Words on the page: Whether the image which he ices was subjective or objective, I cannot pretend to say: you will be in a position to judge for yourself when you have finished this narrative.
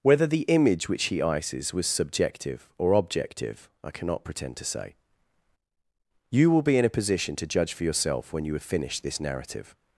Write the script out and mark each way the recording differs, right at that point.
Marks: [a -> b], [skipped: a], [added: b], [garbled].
Whether the image which he ices was subjective or objective, I cannot pretend to say: you will be in a position to judge for yourself when you have finished this narrative.